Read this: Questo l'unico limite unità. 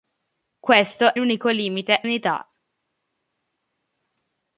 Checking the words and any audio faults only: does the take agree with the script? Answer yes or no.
yes